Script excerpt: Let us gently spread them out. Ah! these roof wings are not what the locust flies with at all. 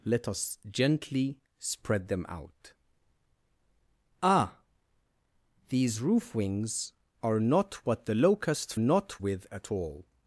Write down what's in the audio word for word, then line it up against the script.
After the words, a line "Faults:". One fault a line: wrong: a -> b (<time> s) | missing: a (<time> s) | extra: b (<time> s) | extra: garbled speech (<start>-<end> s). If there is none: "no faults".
Let us gently spread them out. Ah! these roof wings are not what the locust not with at all.
Faults:
wrong: flies -> not (8.8 s)